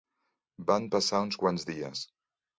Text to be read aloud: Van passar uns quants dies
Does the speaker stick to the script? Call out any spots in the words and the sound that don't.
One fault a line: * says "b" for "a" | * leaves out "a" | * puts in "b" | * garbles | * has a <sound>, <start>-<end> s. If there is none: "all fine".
all fine